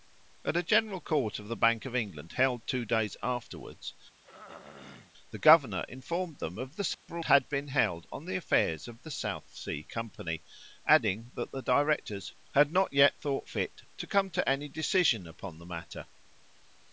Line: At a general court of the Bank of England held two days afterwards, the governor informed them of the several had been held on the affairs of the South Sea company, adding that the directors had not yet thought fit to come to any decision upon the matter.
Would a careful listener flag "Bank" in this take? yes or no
no